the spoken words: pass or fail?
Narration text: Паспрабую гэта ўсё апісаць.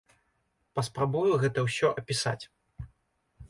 pass